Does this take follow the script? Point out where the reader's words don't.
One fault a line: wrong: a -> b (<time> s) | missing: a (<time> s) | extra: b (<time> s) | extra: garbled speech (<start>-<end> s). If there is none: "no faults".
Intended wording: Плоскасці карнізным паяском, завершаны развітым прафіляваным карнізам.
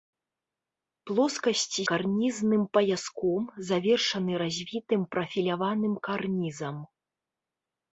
no faults